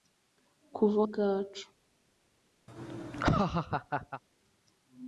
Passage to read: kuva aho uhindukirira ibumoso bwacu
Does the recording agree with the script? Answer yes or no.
no